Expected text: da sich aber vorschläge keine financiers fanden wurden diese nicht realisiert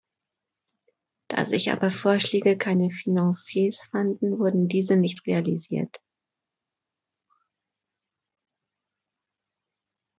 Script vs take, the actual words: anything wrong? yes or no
no